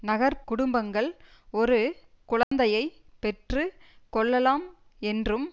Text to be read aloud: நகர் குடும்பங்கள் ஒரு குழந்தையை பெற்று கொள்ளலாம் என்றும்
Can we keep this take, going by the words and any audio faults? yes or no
no